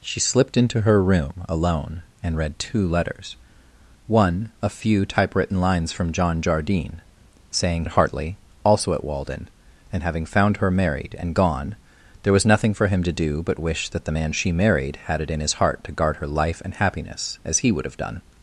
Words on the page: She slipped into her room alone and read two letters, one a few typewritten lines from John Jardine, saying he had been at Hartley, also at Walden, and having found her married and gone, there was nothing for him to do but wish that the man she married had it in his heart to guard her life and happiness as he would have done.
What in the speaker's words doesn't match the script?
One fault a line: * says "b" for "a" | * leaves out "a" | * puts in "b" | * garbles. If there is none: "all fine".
* leaves out "he had been"